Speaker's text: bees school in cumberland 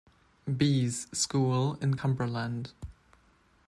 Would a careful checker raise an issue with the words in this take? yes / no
no